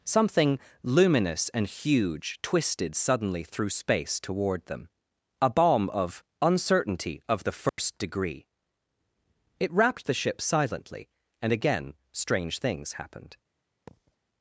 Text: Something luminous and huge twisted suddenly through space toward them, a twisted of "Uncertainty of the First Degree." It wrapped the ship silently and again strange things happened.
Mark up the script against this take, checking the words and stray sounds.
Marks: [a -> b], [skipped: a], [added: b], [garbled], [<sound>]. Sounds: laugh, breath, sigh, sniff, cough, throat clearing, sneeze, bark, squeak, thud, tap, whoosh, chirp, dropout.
Something luminous and huge twisted suddenly through space toward them, a [twisted -> bomb] of "Uncertainty of the First [dropout] Degree." It wrapped the ship silently and again strange things happened. [thud]